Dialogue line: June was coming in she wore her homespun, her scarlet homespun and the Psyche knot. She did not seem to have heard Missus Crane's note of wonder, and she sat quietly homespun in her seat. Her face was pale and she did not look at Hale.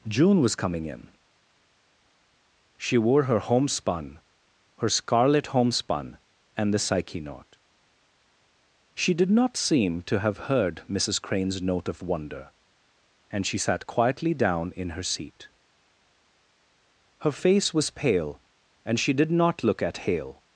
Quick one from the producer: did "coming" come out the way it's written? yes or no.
yes